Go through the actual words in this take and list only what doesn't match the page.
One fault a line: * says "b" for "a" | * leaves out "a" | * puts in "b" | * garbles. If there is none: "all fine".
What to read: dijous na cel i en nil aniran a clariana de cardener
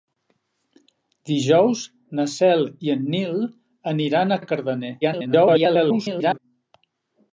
* leaves out "clariana"
* garbles